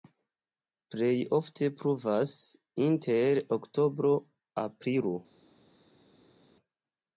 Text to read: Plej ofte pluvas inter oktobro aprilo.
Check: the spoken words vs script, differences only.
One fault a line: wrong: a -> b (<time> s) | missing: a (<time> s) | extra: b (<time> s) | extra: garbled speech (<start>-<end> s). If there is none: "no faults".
no faults